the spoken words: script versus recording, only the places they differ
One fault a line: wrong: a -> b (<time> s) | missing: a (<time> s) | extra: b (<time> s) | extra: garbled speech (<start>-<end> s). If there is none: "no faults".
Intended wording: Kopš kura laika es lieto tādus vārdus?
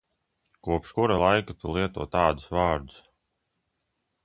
wrong: es -> tu (1.6 s)